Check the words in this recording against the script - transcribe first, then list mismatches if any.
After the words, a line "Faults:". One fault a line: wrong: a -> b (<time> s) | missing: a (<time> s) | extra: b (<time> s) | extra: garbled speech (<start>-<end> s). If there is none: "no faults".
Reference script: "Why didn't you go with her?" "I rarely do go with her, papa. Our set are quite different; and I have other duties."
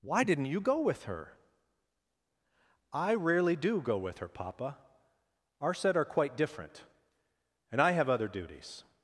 "Why didn't you go with her?" "I rarely do go with her, papa. Our set are quite different; and I have other duties."
Faults:
no faults